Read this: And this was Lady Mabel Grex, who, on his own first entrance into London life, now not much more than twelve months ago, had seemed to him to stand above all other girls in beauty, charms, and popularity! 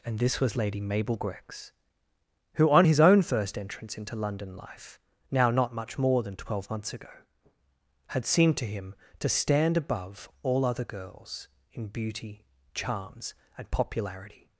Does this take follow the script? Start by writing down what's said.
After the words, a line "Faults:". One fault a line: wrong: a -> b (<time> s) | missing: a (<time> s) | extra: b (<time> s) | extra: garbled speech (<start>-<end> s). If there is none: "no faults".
And this was Lady Mabel Grex, who, on his own first entrance into London life, now not much more than twelve months ago, had seemed to him to stand above all other girls in beauty, charms, and popularity!
Faults:
no faults